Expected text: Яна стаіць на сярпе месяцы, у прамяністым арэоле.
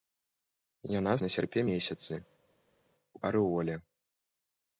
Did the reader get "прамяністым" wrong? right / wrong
wrong